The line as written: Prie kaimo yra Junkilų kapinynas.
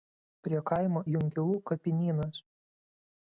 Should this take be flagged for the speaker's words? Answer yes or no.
yes